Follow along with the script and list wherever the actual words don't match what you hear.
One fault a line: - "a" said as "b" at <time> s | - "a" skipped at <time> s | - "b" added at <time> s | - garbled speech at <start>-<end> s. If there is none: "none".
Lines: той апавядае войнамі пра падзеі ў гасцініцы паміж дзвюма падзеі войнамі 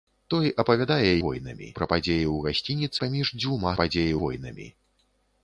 none